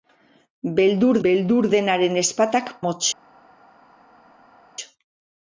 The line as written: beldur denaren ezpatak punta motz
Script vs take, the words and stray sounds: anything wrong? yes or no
yes